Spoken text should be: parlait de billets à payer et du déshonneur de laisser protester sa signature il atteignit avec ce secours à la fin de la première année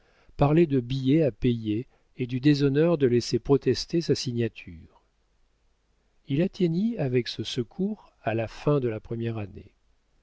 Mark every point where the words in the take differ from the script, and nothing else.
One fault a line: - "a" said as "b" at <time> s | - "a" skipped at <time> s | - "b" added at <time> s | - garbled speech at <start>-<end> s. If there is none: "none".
none